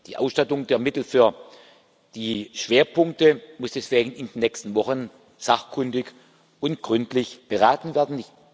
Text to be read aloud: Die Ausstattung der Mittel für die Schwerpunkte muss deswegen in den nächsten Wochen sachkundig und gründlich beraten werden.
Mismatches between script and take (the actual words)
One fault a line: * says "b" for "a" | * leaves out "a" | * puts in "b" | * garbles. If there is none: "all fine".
all fine